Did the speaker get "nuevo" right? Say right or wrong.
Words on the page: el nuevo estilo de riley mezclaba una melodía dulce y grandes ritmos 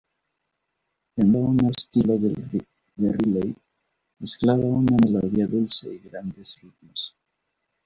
wrong